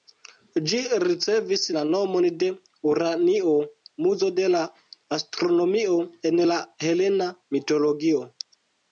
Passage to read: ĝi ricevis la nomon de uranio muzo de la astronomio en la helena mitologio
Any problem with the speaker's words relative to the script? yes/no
no